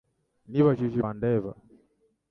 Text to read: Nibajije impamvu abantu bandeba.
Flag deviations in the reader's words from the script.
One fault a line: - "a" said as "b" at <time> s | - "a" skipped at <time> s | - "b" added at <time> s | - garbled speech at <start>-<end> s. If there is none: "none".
- "impamvu abantu" skipped at 1.0 s